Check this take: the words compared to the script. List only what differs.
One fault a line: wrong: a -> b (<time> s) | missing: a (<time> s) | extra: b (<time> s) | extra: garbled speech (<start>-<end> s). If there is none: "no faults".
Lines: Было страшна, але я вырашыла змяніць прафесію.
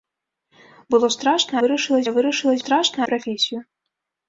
wrong: але -> вырашыла (1.6 s)
wrong: змяніць -> страшна (2.6 s)